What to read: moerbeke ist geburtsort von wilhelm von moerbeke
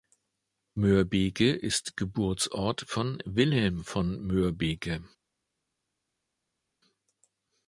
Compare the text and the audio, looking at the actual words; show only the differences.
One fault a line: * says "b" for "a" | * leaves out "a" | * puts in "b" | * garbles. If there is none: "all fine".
all fine